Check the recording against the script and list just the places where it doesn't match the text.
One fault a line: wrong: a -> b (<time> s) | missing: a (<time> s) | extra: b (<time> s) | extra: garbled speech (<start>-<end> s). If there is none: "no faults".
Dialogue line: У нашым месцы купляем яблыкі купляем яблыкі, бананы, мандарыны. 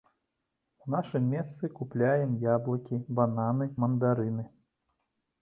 missing: купляем яблыкі (3.0 s)